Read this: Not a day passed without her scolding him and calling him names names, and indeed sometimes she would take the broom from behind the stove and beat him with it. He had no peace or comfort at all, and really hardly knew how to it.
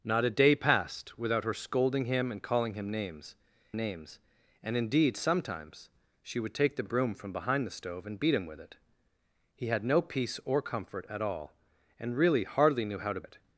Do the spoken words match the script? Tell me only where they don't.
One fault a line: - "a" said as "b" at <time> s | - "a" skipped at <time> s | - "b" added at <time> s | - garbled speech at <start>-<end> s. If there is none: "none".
none